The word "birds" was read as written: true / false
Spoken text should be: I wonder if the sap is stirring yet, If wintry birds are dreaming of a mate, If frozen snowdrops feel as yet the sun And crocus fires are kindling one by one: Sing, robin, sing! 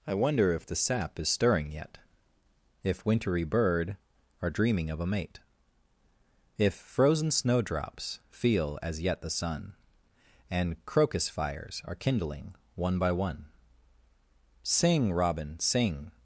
false